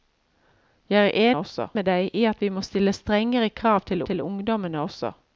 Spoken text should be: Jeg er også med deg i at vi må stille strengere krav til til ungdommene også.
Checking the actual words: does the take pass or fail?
pass